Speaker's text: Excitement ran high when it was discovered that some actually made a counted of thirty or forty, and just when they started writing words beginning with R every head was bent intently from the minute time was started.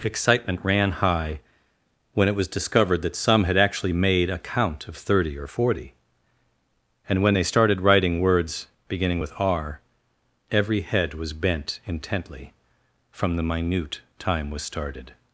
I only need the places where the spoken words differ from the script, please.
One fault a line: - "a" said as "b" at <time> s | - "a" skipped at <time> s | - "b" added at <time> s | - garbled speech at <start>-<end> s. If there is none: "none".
- "had" added at 3.5 s
- "counted" said as "count" at 4.4 s
- "just" skipped at 7.2 s